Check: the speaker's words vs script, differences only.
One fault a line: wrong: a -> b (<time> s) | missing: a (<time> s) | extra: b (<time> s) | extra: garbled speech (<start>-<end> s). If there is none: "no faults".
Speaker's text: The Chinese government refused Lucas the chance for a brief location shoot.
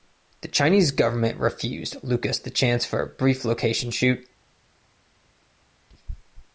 no faults